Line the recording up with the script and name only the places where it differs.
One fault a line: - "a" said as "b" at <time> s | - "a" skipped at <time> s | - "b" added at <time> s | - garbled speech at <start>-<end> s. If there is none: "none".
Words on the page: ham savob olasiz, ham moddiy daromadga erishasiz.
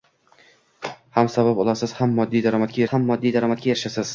- "ham moddiy daromadga" added at 2.9 s